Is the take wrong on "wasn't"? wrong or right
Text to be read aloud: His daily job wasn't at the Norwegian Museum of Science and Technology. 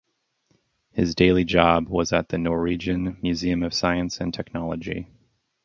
wrong